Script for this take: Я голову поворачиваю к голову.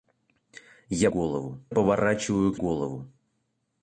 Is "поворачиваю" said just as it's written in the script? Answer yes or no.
yes